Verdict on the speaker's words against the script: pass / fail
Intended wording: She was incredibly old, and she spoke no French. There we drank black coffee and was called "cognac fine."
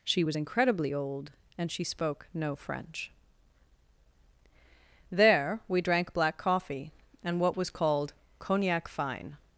fail